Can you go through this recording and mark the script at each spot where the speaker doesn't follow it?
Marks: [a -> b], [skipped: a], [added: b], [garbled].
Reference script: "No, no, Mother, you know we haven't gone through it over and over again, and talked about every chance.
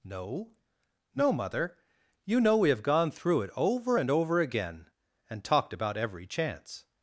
"No, no, Mother, you know we [haven't -> have] gone through it over and over again, and talked about every chance.